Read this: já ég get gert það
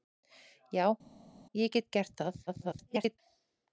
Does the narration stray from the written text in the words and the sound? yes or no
yes